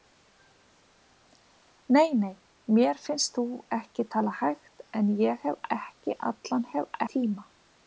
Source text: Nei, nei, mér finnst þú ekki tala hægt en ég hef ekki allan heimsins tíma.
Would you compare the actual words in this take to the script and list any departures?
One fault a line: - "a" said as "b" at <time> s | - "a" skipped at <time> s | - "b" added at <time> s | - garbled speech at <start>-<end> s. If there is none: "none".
- "heimsins" said as "hef" at 6.7 s